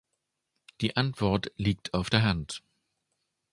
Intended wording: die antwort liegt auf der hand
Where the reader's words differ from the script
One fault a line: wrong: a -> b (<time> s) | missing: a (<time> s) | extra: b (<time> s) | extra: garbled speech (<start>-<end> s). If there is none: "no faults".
no faults